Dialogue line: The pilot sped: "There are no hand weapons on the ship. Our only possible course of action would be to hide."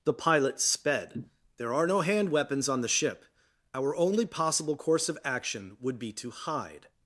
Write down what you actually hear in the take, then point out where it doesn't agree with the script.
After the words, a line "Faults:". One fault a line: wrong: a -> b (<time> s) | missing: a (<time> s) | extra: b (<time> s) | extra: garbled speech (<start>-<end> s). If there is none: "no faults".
The pilot sped: "There are no hand weapons on the ship. Our only possible course of action would be to hide."
Faults:
no faults